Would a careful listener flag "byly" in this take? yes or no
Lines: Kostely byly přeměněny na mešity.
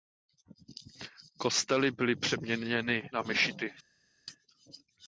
no